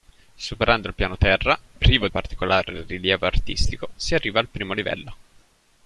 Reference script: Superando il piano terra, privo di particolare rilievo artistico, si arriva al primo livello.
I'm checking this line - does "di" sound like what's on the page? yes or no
no